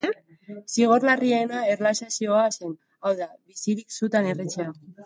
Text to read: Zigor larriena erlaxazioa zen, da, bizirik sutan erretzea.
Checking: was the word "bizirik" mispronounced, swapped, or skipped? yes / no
no